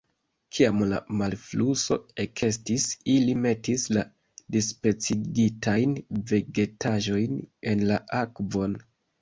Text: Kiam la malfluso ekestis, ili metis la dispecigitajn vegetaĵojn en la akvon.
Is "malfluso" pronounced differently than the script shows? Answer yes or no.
no